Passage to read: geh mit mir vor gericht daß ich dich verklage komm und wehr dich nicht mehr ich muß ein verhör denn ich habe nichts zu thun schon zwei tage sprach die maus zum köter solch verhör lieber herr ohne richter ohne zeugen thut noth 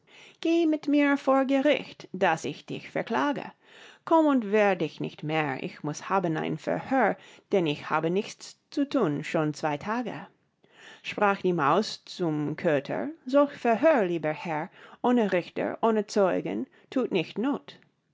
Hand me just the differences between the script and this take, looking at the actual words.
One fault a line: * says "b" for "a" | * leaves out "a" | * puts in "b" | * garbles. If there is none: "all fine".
* puts in "haben"
* puts in "nicht"